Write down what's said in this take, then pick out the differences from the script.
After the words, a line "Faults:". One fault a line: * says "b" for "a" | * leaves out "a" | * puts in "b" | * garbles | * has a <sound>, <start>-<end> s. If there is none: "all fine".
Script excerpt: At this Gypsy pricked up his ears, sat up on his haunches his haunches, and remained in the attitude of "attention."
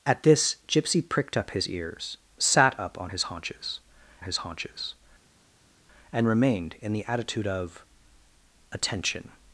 At this Gypsy pricked up his ears, sat up on his haunches his haunches, and remained in the attitude of "attention."
Faults:
all fine